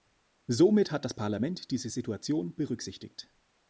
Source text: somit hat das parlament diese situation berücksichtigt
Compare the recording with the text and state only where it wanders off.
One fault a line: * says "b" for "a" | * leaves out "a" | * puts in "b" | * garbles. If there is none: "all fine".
all fine